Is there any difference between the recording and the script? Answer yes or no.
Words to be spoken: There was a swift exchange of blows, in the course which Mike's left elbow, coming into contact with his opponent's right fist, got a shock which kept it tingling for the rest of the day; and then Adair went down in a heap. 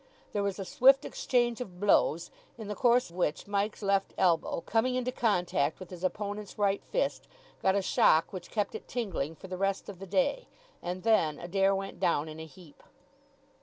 no